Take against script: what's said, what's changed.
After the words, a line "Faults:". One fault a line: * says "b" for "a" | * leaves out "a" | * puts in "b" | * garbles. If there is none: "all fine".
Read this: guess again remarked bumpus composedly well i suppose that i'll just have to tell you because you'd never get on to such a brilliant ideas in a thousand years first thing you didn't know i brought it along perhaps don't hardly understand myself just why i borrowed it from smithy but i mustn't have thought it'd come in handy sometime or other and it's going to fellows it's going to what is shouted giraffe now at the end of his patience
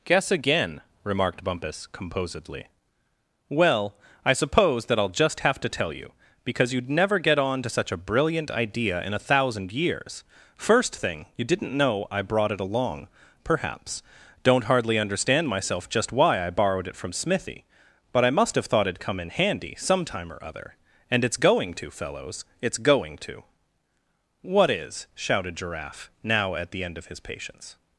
guess again remarked bumpus composedly well i suppose that i'll just have to tell you because you'd never get on to such a brilliant idea in a thousand years first thing you didn't know i brought it along perhaps don't hardly understand myself just why i borrowed it from smithy but i must have thought it'd come in handy sometime or other and it's going to fellows it's going to what is shouted giraffe now at the end of his patience
Faults:
* says "idea" for "ideas"
* says "must" for "mustn't"